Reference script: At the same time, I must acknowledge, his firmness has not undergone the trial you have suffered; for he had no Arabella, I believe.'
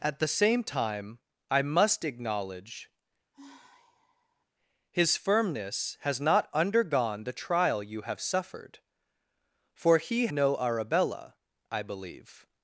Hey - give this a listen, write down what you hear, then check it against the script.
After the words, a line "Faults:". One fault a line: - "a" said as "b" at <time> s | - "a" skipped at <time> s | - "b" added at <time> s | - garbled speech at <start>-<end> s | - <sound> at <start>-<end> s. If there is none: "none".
At the same time, I must acknowledge, his firmness has not undergone the trial you have suffered; for he no Arabella, I believe.'
Faults:
- sigh at 3.3-4.5 s
- "had" skipped at 10.3 s